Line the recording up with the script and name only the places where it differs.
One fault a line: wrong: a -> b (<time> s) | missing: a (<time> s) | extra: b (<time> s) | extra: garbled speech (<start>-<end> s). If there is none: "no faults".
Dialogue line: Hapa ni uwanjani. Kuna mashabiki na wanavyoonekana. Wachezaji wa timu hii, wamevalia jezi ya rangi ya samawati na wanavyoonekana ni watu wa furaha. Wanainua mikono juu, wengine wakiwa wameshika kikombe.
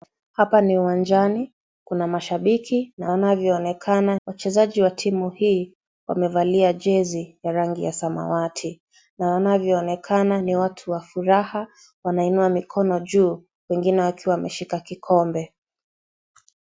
no faults